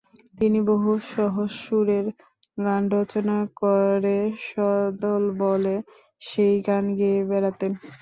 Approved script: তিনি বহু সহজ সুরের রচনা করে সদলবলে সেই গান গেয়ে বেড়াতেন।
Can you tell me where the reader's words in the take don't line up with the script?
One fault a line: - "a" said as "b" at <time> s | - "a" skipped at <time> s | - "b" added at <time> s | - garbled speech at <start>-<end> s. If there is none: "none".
- "গান" added at 2.6 s